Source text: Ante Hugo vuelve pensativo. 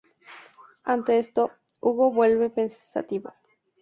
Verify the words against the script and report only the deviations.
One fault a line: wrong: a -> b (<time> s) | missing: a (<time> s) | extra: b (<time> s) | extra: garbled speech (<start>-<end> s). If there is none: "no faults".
extra: esto (1.2 s)